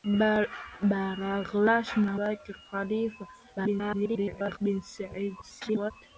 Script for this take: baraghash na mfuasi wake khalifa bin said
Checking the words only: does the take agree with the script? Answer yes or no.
no